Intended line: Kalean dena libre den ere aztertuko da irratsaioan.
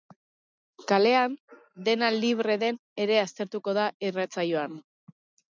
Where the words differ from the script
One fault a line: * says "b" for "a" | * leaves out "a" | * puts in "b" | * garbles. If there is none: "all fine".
all fine